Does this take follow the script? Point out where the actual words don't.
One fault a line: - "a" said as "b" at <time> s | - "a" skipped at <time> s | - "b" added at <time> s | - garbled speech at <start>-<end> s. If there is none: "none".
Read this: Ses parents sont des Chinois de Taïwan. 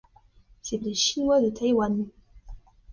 - "parents sont" skipped at 0.8 s